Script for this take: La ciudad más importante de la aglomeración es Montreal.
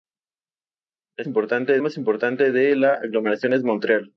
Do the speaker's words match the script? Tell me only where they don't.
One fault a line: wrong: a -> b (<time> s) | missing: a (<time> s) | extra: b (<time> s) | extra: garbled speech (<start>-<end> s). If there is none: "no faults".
wrong: ciudad -> importante (1.3 s)